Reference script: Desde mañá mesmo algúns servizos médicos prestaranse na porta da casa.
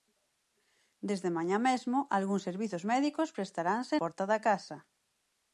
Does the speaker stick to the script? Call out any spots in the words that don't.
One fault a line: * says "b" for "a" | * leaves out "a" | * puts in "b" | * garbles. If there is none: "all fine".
* leaves out "na"